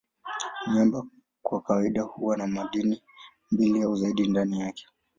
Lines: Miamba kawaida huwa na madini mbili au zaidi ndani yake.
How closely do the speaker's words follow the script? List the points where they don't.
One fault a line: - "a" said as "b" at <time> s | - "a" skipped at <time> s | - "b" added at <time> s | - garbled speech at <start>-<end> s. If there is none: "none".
- "kwa" added at 1.4 s